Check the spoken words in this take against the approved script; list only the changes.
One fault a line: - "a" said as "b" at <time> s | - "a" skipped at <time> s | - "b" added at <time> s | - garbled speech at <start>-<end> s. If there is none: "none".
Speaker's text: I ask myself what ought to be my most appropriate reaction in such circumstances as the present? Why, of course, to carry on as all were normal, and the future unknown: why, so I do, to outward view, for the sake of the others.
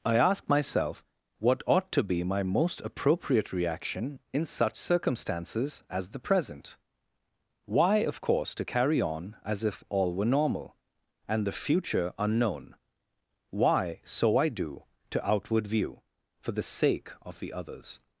- "if" added at 9.6 s